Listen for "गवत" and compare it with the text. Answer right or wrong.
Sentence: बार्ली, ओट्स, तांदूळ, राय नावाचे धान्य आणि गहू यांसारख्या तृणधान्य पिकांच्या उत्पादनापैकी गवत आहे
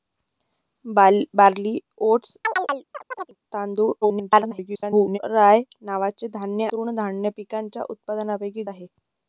wrong